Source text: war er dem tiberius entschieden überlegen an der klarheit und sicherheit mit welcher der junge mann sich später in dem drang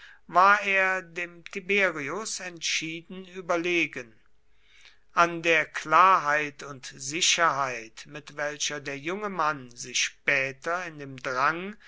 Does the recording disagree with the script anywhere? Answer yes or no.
no